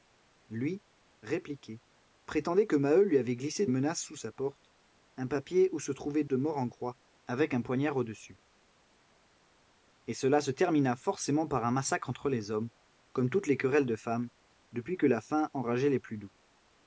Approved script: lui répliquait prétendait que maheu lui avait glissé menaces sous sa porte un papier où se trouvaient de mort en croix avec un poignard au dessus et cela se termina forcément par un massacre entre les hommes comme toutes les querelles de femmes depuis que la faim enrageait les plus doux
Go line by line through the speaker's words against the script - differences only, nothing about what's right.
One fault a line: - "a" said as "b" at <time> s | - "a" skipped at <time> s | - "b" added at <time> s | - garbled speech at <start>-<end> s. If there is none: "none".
none